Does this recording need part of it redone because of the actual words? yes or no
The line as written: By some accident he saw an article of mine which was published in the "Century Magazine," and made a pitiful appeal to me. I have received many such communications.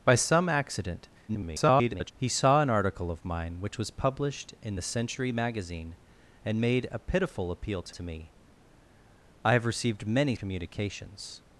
yes